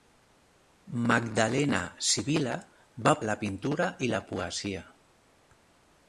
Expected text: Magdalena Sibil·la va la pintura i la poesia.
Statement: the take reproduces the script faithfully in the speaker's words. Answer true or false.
true